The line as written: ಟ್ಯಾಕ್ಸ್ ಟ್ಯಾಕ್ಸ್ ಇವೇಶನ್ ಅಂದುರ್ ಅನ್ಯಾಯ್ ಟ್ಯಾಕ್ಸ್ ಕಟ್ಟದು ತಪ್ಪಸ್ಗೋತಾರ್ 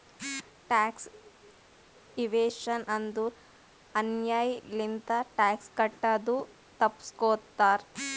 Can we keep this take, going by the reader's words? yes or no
no